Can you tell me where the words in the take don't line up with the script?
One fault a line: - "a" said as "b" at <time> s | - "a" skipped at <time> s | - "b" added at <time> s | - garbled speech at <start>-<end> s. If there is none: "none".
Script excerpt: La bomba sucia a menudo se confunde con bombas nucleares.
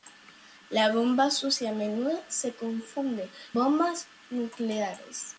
- "con" skipped at 3.3 s